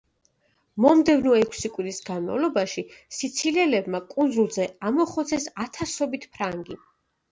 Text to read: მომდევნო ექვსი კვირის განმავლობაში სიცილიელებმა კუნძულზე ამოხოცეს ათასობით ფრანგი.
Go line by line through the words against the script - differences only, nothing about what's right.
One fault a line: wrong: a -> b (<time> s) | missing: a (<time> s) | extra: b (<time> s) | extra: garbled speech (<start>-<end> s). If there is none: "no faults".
no faults